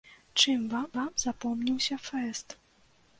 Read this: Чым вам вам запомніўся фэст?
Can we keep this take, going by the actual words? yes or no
yes